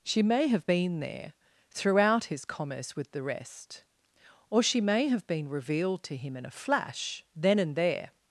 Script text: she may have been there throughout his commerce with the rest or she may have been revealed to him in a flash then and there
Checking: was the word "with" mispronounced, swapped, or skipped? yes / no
no